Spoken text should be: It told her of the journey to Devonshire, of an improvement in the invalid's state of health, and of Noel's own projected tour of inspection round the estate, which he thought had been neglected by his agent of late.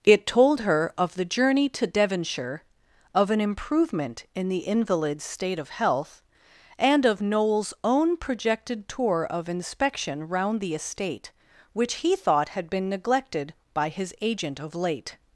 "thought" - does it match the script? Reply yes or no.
yes